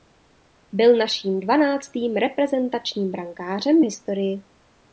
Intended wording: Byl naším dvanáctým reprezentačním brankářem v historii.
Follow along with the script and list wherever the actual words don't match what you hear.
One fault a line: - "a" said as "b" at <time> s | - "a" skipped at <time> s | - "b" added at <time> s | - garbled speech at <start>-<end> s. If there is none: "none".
none